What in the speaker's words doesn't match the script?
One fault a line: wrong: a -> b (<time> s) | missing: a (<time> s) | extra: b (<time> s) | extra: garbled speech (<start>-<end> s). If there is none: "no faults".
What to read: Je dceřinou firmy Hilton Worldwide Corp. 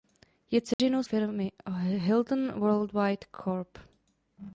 no faults